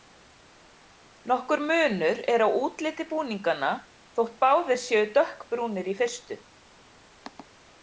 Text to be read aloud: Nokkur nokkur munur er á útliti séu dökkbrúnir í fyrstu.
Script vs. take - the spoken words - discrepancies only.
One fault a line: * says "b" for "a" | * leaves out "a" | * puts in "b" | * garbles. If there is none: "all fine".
* leaves out "nokkur"
* puts in "búninganna þótt báðir"